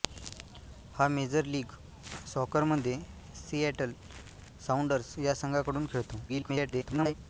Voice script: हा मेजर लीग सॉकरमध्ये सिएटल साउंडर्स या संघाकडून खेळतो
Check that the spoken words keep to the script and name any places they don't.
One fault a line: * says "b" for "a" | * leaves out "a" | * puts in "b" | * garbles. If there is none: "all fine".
* garbles